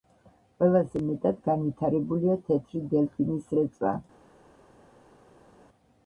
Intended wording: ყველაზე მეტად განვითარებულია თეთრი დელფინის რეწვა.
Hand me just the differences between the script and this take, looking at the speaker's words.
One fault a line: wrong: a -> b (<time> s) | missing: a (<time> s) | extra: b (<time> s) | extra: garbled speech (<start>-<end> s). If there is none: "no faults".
no faults